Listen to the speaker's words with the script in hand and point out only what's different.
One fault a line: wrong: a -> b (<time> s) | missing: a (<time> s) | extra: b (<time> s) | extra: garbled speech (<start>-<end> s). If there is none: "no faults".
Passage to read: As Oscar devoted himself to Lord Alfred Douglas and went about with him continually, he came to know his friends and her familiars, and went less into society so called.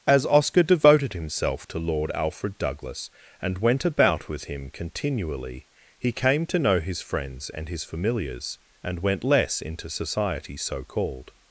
wrong: her -> his (7.7 s)